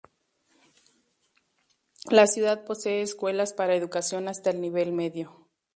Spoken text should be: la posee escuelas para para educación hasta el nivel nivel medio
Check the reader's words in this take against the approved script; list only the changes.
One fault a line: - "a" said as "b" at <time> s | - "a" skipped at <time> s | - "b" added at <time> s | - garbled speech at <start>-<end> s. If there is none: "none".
- "ciudad" added at 2.2 s
- "para" skipped at 3.8 s
- "nivel" skipped at 4.9 s